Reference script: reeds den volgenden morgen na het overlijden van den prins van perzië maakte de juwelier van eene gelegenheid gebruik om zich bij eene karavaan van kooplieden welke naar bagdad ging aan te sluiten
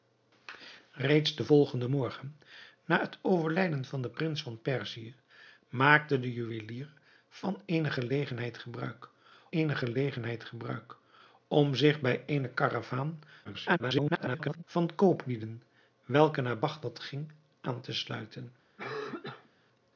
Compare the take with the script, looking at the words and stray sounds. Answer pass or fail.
fail